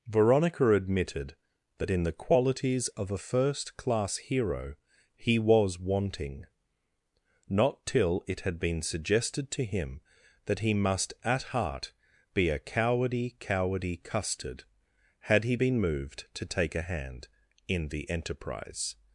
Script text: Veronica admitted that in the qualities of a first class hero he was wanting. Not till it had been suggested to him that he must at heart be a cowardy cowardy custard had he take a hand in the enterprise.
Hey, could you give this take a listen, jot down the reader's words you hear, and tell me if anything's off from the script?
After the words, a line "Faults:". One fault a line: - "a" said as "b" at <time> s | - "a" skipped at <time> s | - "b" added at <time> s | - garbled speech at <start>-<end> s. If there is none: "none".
Veronica admitted that in the qualities of a first class hero he was wanting. Not till it had been suggested to him that he must at heart be a cowardy cowardy custard had he been moved to take a hand in the enterprise.
Faults:
- "been moved to" added at 15.5 s